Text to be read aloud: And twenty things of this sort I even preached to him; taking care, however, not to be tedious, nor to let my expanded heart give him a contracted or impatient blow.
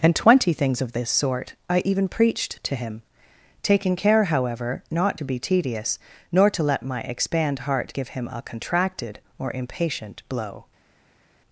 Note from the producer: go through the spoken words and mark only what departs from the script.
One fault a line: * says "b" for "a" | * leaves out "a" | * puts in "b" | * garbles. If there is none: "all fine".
* says "expand" for "expanded"